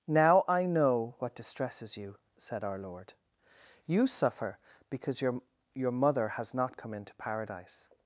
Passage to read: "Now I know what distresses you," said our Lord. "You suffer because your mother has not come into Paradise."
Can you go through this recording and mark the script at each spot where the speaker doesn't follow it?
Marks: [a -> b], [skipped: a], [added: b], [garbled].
"Now I know what distresses you," said our Lord. "You suffer because your [added: your] mother has not come into Paradise."